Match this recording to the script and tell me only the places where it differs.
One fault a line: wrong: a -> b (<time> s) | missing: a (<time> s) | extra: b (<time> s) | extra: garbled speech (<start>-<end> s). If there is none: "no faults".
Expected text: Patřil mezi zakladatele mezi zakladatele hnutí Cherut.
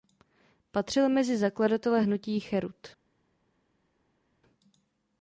missing: mezi zakladatele (2.0 s)